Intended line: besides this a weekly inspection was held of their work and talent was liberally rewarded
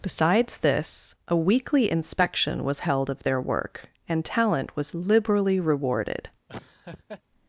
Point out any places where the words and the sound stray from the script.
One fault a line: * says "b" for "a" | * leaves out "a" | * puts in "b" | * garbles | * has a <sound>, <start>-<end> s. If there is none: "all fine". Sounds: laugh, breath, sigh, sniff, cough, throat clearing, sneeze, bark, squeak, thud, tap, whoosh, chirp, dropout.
* has a laugh, 6.5-7.2 s